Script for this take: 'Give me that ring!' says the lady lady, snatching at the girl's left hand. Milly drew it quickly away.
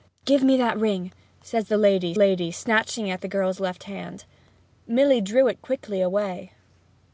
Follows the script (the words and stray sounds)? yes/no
yes